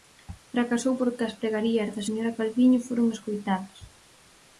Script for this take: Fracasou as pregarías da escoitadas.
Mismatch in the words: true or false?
true